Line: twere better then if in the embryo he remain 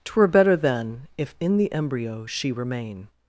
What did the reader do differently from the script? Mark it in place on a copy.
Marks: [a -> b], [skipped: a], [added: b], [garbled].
twere better then if in the embryo [he -> she] remain